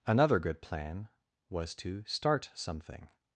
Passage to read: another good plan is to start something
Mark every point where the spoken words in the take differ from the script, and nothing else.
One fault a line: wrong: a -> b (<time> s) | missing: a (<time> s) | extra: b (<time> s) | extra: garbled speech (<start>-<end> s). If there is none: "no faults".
wrong: is -> was (1.5 s)